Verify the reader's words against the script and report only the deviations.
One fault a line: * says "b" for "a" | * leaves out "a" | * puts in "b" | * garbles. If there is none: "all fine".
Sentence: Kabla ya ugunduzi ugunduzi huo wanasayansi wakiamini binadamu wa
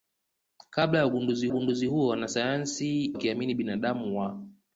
all fine